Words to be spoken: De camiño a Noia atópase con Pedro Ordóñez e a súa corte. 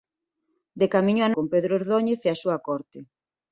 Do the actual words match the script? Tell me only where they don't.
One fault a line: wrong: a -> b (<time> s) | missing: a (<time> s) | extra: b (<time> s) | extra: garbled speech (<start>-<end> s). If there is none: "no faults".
missing: Noia atópase (1.3 s)